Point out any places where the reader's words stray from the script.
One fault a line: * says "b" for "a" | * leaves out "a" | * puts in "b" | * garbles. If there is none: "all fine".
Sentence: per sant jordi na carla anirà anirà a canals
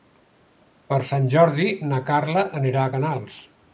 * leaves out "anirà"